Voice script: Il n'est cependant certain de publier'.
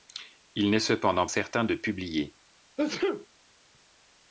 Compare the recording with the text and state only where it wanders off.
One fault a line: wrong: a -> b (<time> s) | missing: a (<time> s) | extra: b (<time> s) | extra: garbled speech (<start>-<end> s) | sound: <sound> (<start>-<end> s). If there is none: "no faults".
sound: sneeze (2.8-3.3 s)